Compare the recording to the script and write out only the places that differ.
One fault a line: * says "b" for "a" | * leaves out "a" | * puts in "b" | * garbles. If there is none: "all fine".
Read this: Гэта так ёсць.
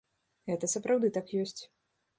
* puts in "сапраўды"